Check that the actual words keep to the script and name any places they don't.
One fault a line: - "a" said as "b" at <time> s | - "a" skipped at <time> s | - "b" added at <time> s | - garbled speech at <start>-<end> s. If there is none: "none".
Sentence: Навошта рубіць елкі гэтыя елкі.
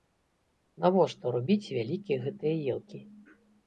- "елкі" said as "вялікія" at 1.8 s